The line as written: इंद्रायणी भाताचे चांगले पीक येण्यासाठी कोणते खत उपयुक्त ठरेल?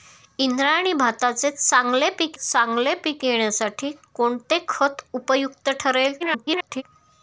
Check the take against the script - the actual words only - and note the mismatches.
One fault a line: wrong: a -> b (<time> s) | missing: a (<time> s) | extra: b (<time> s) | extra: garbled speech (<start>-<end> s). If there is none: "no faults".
extra: चांगले पीक (2.3 s)
extra: garbled speech (6.2-6.8 s)